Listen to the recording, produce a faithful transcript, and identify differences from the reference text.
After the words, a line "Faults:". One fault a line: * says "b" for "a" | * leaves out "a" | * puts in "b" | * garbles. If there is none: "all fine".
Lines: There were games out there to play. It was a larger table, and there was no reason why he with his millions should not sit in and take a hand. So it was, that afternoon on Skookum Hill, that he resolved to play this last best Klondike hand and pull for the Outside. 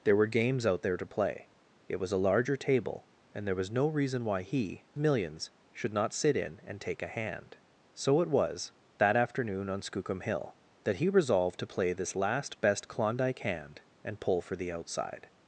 There were games out there to play. It was a larger table, and there was no reason why he millions should not sit in and take a hand. So it was, that afternoon on Skookum Hill, that he resolved to play this last best Klondike hand and pull for the Outside.
Faults:
* leaves out "with his"